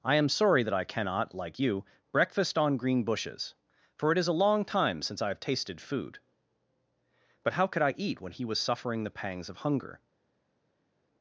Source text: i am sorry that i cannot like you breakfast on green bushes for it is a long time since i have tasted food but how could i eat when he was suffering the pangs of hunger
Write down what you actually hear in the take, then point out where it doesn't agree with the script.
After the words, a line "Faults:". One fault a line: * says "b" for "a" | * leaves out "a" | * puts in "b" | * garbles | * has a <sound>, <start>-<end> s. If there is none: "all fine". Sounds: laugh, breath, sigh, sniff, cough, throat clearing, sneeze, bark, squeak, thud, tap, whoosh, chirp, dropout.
i am sorry that i cannot like you breakfast on green bushes for it is a long time since i have tasted food but how could i eat when he was suffering the pangs of hunger
Faults:
all fine